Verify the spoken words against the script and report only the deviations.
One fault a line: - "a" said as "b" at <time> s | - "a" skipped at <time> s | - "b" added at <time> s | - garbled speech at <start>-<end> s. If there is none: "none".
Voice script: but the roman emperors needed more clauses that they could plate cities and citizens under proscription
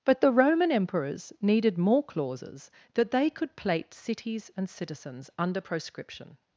none